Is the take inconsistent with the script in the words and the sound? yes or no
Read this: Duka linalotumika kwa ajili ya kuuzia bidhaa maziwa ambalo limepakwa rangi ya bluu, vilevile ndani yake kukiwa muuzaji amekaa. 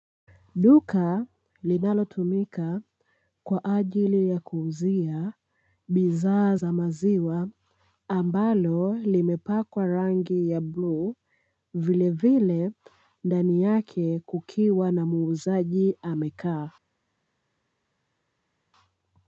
yes